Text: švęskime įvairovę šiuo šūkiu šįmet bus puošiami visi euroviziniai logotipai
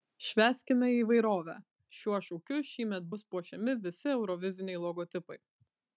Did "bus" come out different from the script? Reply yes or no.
no